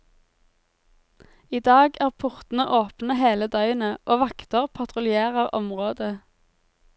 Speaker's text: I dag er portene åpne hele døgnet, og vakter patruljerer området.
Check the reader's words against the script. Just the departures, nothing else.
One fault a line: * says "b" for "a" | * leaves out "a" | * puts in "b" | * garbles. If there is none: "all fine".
all fine